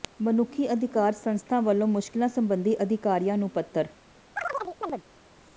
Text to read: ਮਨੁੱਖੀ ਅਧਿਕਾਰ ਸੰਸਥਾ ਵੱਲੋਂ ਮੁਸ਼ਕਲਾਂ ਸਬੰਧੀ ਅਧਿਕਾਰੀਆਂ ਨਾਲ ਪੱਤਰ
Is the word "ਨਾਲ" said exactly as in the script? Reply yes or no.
no